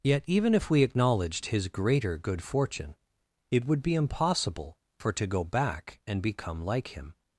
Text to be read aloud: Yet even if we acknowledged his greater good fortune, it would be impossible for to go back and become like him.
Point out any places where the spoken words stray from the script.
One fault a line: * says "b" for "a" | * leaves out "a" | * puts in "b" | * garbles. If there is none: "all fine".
all fine